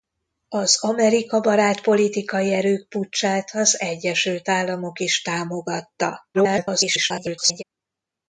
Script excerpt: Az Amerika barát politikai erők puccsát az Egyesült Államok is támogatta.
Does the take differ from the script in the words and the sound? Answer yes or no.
yes